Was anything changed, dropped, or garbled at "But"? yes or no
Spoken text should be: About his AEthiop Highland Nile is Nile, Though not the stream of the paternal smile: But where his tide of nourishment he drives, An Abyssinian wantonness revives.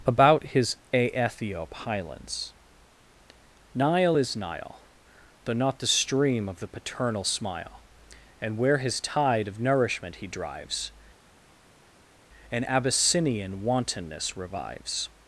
yes